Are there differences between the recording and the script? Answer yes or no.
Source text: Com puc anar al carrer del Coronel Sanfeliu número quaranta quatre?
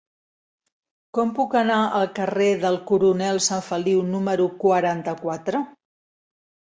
no